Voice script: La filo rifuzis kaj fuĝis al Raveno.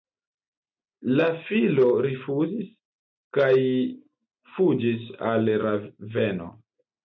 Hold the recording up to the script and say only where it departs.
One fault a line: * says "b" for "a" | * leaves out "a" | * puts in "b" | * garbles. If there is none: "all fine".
all fine